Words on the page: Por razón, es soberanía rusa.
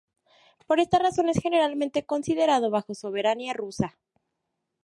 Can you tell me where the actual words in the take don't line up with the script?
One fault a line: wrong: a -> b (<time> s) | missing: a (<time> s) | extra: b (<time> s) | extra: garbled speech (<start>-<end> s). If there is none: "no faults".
extra: esta (0.8 s)
extra: generalmente considerado bajo (1.4 s)